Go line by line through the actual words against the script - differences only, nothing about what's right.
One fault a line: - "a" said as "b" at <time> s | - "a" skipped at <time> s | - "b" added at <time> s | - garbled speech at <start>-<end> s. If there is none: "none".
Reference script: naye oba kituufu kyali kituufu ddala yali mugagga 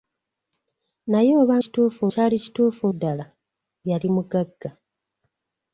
none